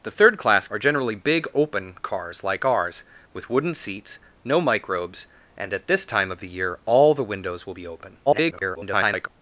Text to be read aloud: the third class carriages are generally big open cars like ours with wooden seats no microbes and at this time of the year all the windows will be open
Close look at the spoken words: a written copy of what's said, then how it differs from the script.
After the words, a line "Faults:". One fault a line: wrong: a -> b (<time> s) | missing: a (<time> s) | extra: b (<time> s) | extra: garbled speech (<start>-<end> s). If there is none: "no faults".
the third class are generally big open cars like ours with wooden seats no microbes and at this time of the year all the windows will be open [garbled]
Faults:
missing: carriages (0.7 s)
extra: garbled speech (8.3-9.3 s)